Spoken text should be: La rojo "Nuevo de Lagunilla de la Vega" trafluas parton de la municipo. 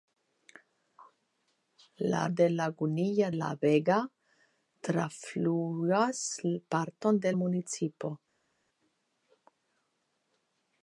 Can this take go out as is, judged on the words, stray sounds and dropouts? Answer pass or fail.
fail